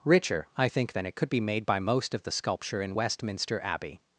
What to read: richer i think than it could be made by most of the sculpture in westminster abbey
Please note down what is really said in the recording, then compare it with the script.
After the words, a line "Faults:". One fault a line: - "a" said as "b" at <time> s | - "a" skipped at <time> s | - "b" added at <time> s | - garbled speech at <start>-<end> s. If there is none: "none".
richer i think than it could be made by most of the sculpture in westminster abbey
Faults:
none